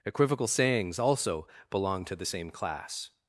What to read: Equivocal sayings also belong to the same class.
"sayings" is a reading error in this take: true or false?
false